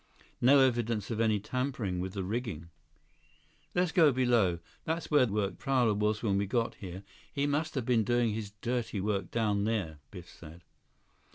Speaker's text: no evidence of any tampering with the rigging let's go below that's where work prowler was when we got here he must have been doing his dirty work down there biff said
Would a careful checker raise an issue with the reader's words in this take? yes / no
no